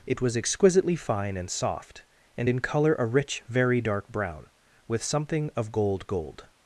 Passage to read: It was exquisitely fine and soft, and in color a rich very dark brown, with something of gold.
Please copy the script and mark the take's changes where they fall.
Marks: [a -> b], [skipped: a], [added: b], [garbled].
It was exquisitely fine and soft, and in color a rich very dark brown, with something of gold. [added: gold]